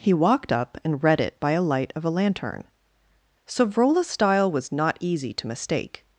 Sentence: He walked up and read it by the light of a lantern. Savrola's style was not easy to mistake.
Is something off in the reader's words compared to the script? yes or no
yes